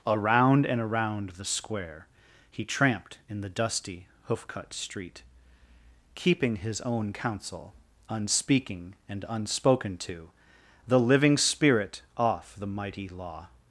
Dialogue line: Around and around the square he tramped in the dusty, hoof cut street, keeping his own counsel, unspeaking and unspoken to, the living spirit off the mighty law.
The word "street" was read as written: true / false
true